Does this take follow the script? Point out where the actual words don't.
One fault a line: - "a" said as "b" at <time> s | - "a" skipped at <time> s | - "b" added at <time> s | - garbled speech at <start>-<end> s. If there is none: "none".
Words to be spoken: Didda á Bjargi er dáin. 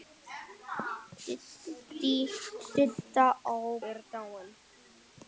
- "Bjargi" skipped at 3.5 s